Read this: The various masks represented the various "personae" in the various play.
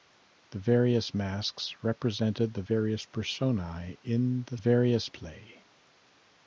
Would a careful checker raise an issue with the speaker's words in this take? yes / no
no